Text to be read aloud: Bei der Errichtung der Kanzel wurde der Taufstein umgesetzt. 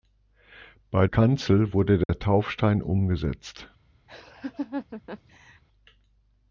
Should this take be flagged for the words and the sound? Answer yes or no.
yes